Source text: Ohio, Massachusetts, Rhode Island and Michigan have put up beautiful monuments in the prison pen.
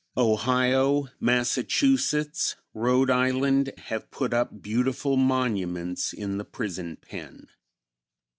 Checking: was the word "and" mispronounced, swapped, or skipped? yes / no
yes